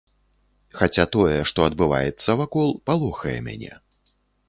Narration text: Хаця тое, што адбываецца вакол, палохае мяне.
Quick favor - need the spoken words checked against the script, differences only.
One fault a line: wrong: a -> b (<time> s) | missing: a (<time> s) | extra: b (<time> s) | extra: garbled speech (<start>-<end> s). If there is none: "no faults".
no faults